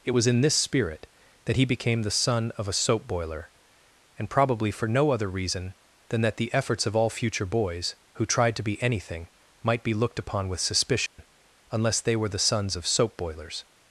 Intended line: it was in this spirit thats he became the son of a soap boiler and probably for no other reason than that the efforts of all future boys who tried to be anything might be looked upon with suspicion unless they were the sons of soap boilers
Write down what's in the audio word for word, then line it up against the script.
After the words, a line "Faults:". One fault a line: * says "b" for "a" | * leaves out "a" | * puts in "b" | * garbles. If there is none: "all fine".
it was in this spirit that he became the son of a soap boiler and probably for no other reason than that the efforts of all future boys who tried to be anything might be looked upon with suspicion unless they were the sons of soap boilers
Faults:
* says "that" for "thats"